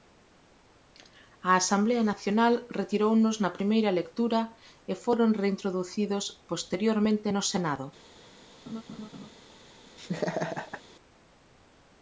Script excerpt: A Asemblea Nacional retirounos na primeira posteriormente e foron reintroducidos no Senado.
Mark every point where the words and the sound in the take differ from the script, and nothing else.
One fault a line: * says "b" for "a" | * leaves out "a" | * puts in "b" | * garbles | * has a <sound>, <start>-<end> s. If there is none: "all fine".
* says "lectura" for "posteriormente"
* puts in "posteriormente"
* has a laugh, 8.7-9.3 s
* has a laugh, 10.0-10.8 s